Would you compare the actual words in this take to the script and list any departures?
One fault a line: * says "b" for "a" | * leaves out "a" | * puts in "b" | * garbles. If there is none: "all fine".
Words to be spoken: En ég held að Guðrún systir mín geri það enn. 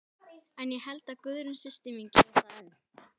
all fine